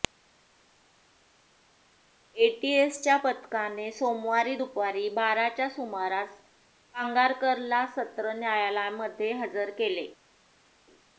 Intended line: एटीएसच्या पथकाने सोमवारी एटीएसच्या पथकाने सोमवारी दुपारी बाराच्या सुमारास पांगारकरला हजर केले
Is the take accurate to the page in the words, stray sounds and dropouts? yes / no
no